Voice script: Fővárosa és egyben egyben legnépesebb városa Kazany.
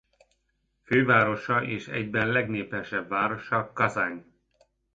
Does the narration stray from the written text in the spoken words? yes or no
yes